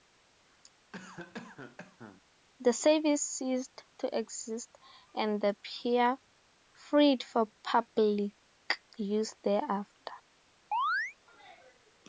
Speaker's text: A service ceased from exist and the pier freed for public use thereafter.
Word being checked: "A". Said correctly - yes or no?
no